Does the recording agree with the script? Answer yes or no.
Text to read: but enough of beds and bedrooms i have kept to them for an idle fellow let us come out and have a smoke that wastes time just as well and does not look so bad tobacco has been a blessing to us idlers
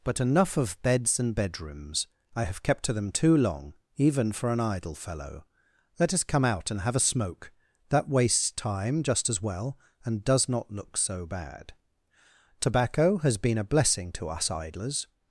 no